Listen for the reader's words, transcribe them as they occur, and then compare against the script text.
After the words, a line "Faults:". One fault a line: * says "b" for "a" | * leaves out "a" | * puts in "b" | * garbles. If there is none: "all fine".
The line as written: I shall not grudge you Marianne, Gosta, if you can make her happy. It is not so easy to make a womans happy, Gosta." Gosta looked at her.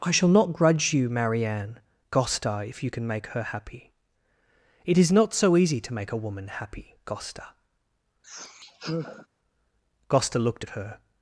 I shall not grudge you Marianne, Gosta, if you can make her happy. It is not so easy to make a woman happy, Gosta." Gosta looked at her.
Faults:
* says "woman" for "womans"